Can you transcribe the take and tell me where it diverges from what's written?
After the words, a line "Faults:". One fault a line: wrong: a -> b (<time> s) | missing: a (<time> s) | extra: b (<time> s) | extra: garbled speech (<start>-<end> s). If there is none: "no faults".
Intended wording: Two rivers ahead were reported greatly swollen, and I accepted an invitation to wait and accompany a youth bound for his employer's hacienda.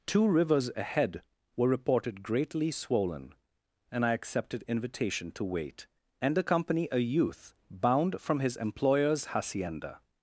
Two rivers ahead were reported greatly swollen, and I accepted invitation to wait and accompany a youth bound from his employer's hacienda.
Faults:
missing: an (4.6 s)
wrong: for -> from (8.2 s)